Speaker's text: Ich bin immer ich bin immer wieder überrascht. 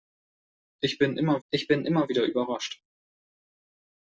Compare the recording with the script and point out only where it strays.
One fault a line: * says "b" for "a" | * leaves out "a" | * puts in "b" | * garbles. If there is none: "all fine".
all fine